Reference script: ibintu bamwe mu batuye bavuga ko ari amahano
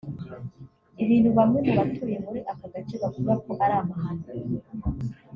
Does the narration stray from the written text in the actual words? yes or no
yes